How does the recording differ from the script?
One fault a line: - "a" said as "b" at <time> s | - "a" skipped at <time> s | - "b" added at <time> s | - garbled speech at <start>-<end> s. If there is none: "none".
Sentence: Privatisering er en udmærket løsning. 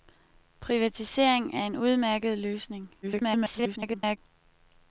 - garbled speech at 3.0-4.2 s